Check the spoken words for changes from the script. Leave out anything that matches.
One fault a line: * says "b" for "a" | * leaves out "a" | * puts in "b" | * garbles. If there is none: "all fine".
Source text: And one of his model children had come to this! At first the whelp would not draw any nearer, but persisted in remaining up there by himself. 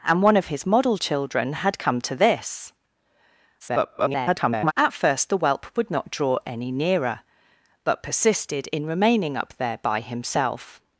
* garbles